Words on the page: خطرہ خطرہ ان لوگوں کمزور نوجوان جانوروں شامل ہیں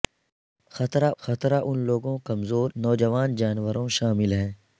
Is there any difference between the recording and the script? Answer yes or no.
no